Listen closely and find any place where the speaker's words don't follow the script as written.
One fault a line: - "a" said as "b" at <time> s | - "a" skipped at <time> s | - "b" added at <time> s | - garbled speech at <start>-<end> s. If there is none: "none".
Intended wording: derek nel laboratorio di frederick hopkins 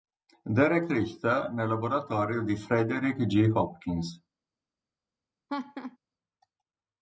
- "richter" added at 0.9 s
- "g" added at 3.3 s